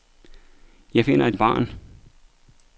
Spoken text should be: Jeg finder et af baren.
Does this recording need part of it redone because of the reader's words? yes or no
no